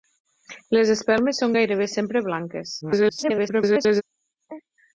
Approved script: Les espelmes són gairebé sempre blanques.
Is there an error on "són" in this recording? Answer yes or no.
no